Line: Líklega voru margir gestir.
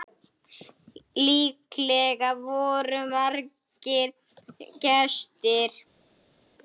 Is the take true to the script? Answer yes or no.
yes